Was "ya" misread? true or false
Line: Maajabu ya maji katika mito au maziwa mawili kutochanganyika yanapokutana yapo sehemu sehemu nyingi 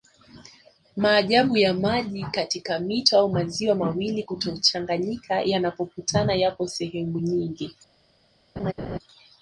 false